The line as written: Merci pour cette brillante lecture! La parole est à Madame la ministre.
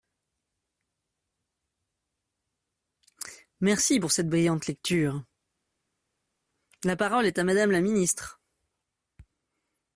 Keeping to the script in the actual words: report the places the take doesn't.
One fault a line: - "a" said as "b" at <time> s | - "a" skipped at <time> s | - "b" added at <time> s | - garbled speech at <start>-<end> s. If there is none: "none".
none